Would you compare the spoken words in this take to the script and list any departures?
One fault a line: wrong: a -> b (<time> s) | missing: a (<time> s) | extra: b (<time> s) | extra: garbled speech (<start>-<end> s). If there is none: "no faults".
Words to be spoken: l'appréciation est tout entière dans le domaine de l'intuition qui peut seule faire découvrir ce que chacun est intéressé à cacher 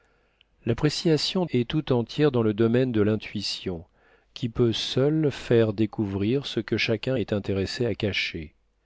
no faults